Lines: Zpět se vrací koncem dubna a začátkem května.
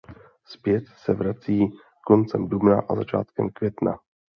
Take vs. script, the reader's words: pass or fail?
pass